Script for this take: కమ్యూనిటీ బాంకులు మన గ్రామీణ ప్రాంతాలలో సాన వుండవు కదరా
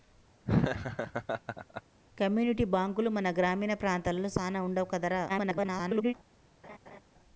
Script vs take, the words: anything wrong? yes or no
yes